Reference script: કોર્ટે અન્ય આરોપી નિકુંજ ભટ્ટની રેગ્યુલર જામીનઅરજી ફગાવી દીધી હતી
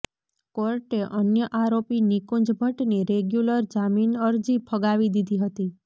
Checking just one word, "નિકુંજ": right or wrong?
right